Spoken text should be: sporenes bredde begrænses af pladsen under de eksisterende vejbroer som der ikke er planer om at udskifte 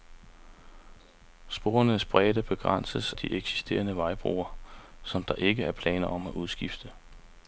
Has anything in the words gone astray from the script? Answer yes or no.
yes